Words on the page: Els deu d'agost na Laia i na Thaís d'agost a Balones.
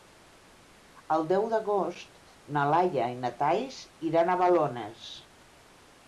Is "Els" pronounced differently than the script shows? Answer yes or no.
yes